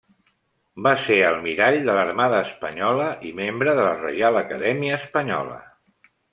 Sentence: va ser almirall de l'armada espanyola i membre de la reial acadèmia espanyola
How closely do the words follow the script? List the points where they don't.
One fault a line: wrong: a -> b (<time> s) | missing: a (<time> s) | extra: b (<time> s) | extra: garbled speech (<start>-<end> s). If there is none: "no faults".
no faults